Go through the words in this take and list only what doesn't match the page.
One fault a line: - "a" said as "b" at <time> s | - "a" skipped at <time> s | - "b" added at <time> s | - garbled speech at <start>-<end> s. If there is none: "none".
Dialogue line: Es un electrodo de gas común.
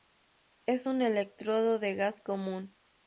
none